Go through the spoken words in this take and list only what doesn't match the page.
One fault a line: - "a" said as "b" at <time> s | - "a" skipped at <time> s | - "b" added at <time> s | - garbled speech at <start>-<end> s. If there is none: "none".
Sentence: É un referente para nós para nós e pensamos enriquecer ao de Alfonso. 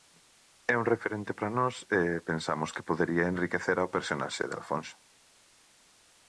- "para nós e pensamos" said as "e pensamos que podería" at 2.0 s
- "personaxe" added at 4.0 s